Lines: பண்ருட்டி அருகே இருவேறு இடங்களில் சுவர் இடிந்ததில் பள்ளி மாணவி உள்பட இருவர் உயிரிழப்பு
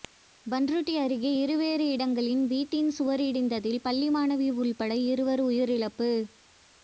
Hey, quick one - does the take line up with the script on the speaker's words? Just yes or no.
no